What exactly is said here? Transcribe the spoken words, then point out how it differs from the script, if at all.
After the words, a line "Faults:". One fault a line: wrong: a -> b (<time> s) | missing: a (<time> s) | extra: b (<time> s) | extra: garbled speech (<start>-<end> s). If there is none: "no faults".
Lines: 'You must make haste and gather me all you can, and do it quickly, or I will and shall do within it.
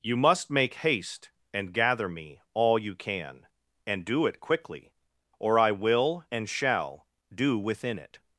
'You must make haste and gather me all you can, and do it quickly, or I will and shall do within it.
Faults:
no faults